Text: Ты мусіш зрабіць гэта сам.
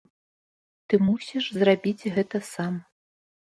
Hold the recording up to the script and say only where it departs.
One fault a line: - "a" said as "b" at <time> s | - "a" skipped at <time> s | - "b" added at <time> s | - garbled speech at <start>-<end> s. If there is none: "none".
none